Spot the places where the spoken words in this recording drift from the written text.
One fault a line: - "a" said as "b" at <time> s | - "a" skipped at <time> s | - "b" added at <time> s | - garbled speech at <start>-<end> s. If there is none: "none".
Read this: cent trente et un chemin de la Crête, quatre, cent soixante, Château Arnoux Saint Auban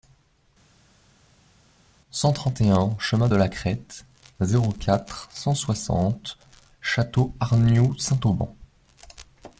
- "zéro" added at 4.4 s